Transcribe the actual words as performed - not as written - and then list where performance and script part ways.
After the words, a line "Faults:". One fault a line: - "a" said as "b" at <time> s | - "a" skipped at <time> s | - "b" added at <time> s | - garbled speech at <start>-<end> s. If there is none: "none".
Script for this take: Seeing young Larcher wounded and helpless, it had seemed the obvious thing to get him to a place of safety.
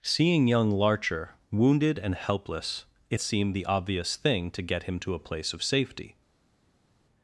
Seeing young Larcher wounded and helpless, it seemed the obvious thing to get him to a place of safety.
Faults:
- "had" skipped at 3.2 s